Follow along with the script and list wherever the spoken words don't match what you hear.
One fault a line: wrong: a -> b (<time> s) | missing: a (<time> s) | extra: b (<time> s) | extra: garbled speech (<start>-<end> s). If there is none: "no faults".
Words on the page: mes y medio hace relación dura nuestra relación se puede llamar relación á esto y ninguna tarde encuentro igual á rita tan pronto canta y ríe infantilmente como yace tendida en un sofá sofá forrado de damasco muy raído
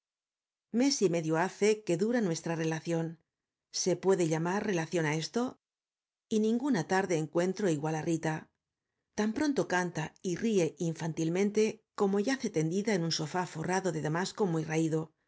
wrong: relación -> que (1.8 s)
missing: sofá (13.4 s)